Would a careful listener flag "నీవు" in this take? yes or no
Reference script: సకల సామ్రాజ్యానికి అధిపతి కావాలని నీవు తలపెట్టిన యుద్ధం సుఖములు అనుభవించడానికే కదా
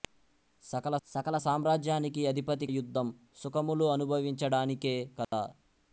yes